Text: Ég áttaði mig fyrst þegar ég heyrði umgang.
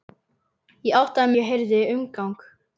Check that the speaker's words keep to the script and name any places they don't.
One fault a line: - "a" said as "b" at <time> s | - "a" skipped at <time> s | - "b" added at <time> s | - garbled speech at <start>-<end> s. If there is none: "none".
- "mig fyrst þegar" skipped at 1.3 s